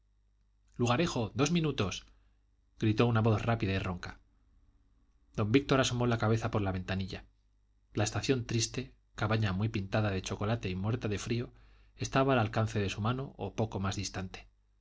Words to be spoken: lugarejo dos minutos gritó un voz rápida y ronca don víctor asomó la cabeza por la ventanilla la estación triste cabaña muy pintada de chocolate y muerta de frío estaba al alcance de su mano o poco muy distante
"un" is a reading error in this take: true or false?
true